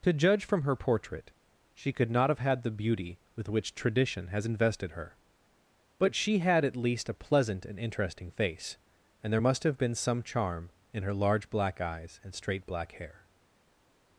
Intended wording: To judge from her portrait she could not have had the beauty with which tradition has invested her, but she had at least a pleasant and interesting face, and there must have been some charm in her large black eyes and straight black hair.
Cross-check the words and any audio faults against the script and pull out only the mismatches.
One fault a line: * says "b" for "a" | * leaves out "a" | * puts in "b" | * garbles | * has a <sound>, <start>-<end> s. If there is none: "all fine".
all fine